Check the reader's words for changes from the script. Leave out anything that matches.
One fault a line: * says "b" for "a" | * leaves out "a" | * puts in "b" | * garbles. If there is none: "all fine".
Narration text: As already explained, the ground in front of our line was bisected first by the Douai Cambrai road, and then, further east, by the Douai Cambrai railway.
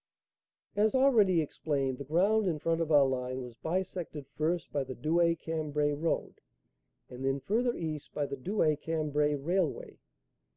all fine